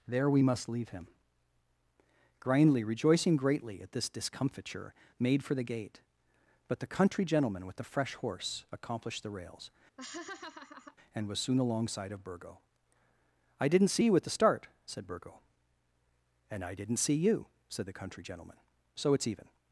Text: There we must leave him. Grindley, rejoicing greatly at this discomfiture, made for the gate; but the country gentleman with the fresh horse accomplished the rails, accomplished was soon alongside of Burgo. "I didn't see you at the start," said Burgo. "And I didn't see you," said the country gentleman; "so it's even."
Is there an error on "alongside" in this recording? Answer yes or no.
no